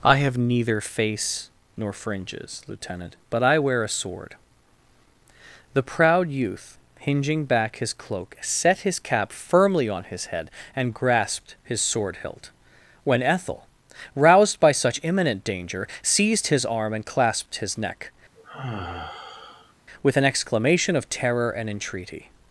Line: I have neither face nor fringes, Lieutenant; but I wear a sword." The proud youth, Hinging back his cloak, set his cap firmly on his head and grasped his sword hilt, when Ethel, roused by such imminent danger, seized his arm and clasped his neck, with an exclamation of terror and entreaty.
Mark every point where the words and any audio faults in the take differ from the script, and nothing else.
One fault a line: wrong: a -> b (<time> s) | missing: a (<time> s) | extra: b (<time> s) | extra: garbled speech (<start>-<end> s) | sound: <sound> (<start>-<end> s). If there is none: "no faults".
sound: sigh (18.4-19.7 s)